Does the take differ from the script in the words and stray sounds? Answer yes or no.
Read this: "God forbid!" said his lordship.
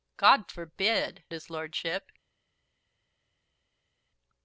yes